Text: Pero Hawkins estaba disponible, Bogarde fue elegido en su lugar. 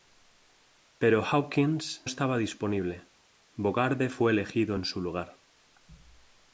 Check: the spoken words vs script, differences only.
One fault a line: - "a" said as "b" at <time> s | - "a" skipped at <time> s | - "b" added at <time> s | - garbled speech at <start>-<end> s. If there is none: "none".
none